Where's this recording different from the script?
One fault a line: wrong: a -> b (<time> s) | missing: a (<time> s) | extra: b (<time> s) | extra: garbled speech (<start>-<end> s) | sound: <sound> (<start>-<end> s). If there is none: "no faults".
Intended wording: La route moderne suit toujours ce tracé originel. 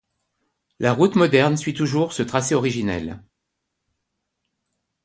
no faults